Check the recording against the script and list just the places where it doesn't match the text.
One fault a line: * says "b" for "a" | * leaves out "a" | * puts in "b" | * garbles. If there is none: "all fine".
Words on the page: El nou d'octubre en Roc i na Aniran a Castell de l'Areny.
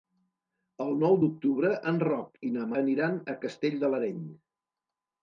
all fine